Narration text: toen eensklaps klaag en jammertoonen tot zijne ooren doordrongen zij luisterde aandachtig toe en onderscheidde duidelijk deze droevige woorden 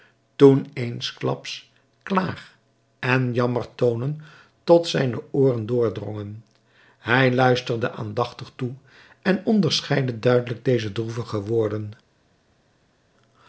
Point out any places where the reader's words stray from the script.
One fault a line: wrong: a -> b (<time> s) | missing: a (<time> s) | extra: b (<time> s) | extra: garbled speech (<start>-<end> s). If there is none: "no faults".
wrong: zij -> hij (7.0 s)